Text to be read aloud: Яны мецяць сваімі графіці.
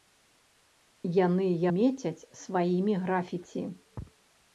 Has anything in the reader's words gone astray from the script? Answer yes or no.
no